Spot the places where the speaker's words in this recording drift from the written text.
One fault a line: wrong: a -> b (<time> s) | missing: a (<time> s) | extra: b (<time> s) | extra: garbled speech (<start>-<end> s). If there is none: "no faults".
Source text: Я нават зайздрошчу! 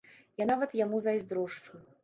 extra: яму (0.8 s)